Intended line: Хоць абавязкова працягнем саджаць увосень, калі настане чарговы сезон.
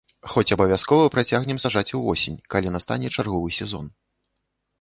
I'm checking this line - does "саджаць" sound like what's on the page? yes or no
yes